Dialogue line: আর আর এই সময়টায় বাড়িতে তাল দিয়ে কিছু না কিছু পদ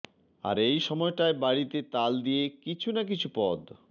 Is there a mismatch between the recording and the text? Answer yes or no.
yes